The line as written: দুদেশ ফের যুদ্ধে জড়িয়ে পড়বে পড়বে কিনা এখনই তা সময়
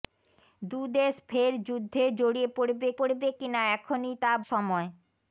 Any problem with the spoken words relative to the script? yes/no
no